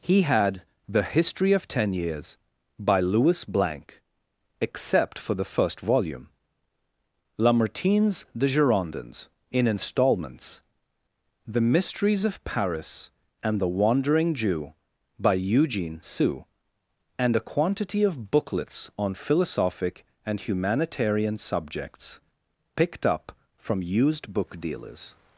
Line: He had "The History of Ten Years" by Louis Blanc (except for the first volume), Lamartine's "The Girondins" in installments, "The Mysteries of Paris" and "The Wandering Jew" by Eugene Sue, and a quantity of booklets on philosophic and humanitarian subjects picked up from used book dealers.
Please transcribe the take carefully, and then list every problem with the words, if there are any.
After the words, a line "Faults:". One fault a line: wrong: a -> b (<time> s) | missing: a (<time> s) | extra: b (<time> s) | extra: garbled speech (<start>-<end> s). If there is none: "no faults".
He had "The History of Ten Years" by Louis Blanc (except for the first volume), Lamartine's "The Girondins" in installments, "The Mysteries of Paris" and "The Wandering Jew" by Eugene Sue, and a quantity of booklets on philosophic and humanitarian subjects picked up from used book dealers.
Faults:
no faults